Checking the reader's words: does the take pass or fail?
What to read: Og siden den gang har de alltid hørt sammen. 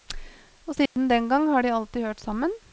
pass